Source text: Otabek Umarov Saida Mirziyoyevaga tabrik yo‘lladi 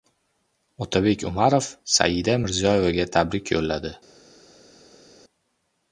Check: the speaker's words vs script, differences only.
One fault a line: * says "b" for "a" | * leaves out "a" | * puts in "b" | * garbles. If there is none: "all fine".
all fine